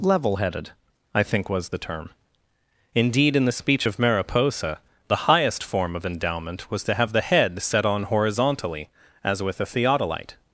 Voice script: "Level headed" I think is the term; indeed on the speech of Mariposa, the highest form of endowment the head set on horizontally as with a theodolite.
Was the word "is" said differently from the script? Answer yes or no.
yes